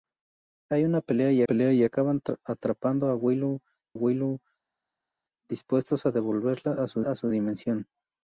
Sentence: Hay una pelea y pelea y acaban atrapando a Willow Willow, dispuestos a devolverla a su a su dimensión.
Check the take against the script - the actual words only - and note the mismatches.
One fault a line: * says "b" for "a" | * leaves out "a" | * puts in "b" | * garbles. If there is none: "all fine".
all fine